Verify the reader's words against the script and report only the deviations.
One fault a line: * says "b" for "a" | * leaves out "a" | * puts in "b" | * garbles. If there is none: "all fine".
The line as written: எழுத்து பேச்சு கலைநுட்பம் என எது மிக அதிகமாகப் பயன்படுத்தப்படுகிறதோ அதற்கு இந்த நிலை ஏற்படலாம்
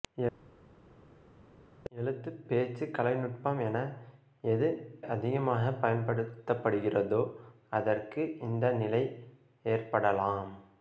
* leaves out "மிக"